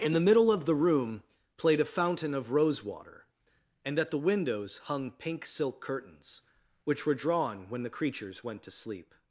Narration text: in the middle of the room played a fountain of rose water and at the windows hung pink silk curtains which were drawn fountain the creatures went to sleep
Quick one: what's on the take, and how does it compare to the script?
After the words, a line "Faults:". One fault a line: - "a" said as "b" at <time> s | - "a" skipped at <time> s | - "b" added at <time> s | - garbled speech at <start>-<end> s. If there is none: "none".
in the middle of the room played a fountain of rose water and at the windows hung pink silk curtains which were drawn when the creatures went to sleep
Faults:
- "fountain" said as "when" at 7.7 s